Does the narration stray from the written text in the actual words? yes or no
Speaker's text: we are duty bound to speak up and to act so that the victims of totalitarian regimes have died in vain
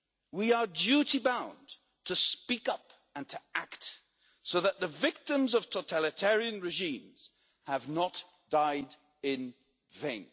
yes